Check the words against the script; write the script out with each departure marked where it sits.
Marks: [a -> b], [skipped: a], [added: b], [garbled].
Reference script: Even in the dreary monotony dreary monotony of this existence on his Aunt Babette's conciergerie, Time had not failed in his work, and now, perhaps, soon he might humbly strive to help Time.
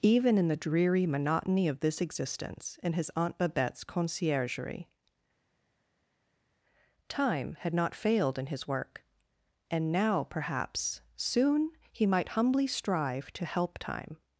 Even in the dreary monotony [skipped: dreary monotony] of this existence [on -> in] his Aunt Babette's conciergerie, Time had not failed in his work, and now, perhaps, soon he might humbly strive to help Time.